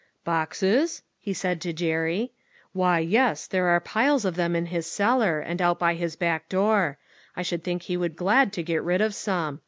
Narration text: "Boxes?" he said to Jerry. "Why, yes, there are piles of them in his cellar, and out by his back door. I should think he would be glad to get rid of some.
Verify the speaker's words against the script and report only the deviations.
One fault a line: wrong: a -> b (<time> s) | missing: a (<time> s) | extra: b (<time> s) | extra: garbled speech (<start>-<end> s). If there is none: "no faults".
missing: be (8.1 s)